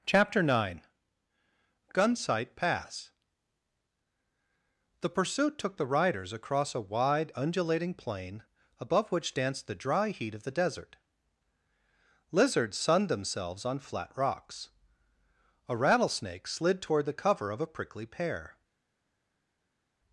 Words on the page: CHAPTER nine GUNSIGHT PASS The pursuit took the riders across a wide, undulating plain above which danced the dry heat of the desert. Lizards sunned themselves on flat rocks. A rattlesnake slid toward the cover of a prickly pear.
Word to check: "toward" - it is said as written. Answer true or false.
true